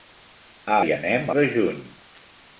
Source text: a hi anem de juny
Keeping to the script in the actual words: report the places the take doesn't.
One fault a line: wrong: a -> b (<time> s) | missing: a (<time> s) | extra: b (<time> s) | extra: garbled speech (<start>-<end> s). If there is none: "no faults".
no faults